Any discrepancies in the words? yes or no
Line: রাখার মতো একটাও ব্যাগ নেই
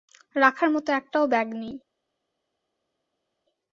no